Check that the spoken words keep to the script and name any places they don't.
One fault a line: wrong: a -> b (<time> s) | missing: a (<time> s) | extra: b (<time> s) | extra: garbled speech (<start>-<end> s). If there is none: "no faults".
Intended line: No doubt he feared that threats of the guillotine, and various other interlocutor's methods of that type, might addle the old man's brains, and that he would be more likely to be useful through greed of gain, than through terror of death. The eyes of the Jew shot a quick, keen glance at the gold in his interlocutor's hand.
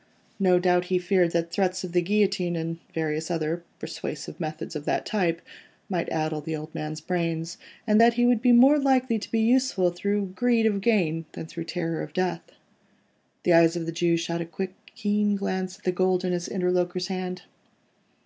wrong: interlocutor's -> persuasive (3.8 s)